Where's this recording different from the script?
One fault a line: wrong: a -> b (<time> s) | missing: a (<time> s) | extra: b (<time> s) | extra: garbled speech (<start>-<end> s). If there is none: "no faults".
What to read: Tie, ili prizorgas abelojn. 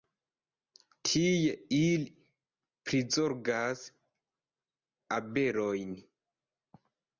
no faults